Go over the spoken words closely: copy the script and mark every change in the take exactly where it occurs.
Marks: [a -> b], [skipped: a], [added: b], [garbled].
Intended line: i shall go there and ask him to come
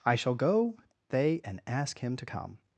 i shall go [there -> they] and ask him to come